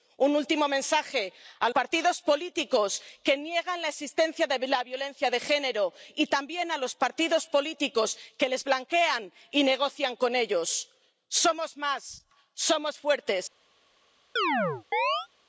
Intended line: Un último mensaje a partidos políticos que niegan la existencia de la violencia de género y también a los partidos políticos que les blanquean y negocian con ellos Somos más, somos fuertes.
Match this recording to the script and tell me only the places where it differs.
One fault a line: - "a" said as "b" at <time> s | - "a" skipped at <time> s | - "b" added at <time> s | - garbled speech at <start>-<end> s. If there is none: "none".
none